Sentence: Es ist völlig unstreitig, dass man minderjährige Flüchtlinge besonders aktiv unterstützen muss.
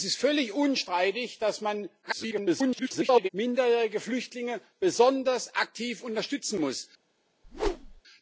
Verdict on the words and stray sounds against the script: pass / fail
fail